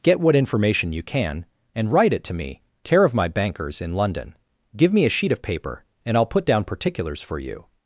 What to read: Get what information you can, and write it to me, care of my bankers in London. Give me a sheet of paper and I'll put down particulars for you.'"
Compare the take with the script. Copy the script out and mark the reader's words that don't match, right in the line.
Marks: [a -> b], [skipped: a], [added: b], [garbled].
Get what information you can, and write it to me, care of my bankers in London. Give me a sheet of paper and I'll put down particulars for you.'"